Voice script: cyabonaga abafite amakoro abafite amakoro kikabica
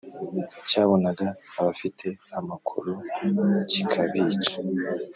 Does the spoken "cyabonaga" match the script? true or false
true